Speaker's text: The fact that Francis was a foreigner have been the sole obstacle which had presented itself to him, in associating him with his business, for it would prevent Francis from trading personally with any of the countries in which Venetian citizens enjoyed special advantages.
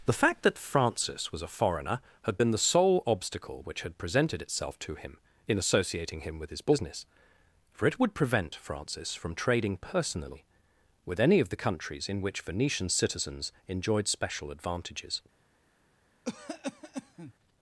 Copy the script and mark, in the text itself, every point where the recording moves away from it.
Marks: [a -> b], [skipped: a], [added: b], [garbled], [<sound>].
The fact that Francis was a foreigner [have -> had] been the sole obstacle which had presented itself to him, in associating him with his business, for it would prevent Francis from trading personally with any of the countries in which Venetian citizens enjoyed special advantages. [cough]